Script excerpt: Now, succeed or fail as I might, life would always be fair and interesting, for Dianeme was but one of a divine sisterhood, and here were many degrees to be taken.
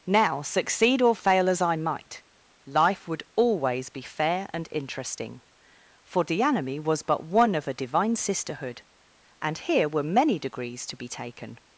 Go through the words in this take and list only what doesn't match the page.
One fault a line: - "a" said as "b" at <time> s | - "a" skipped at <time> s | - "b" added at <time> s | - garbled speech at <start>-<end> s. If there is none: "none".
none